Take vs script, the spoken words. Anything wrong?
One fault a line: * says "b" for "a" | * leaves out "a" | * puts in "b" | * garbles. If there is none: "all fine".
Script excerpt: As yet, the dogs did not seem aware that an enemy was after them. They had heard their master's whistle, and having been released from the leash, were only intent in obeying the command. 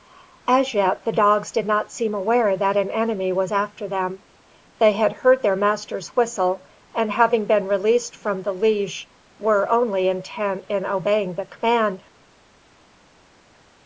all fine